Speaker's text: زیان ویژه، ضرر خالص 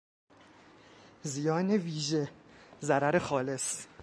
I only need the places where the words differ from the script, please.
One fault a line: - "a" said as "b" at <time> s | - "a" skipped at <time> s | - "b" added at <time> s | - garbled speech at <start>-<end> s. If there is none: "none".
none